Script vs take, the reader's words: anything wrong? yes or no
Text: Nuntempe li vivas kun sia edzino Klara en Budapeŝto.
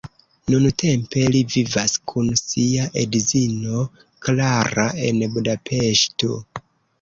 no